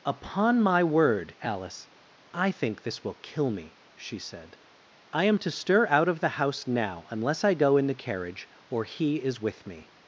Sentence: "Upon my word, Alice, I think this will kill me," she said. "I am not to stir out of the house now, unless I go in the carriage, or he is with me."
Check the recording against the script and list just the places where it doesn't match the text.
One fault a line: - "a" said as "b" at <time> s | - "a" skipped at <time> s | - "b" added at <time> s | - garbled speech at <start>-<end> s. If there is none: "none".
- "not" skipped at 5.4 s